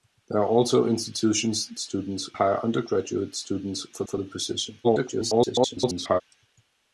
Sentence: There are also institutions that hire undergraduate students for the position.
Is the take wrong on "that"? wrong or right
wrong